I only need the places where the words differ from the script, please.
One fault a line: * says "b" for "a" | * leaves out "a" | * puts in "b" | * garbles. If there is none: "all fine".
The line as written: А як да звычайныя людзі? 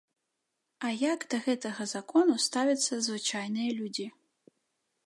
* puts in "гэтага закону ставяцца"